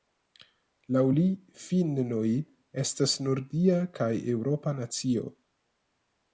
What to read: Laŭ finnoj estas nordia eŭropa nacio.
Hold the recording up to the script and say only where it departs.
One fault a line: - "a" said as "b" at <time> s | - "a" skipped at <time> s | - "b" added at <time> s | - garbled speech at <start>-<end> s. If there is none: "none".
- "li" added at 1.2 s
- "kaj" added at 4.0 s